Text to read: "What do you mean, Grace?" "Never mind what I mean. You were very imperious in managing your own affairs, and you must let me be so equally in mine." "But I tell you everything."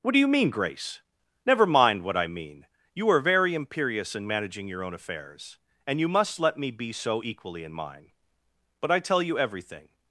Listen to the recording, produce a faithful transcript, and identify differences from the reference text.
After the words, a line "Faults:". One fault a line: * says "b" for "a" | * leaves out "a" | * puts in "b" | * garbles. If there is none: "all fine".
"What do you mean, Grace?" "Never mind what I mean. You are very imperious in managing your own affairs, and you must let me be so equally in mine." "But I tell you everything."
Faults:
* says "are" for "were"